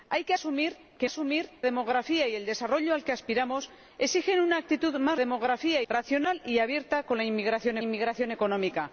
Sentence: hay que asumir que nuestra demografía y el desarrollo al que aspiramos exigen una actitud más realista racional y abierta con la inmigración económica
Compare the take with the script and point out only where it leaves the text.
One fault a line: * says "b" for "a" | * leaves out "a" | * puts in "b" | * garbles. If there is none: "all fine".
* says "asumir" for "nuestra"
* says "demografía" for "realista"
* puts in "inmigración"